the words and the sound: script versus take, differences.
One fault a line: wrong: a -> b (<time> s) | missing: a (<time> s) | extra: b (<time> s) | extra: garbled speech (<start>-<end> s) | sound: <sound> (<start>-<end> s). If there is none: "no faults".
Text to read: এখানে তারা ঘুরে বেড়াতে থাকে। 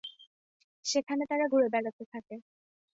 wrong: এখানে -> সেখানে (0.8 s)